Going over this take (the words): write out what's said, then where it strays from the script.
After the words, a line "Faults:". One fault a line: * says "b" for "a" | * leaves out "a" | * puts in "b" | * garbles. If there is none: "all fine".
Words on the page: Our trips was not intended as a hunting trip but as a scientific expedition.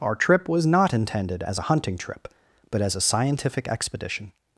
Our trip was not intended as a hunting trip but as a scientific expedition.
Faults:
* says "trip" for "trips"